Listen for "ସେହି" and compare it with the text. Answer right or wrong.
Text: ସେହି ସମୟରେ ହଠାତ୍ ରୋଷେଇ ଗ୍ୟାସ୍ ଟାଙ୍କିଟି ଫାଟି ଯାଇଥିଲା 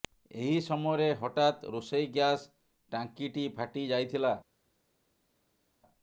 wrong